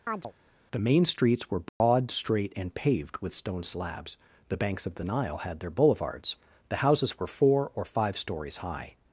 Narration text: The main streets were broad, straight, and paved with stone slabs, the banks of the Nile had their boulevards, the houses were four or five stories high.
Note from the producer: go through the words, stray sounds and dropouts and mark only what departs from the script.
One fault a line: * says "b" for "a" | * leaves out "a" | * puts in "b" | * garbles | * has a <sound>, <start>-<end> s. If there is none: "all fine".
* has a chirp, 0.1-0.3 s
* has a dropout, 1.7-1.8 s